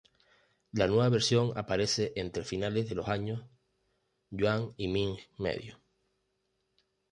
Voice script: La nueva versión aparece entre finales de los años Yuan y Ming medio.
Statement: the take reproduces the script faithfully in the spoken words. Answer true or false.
true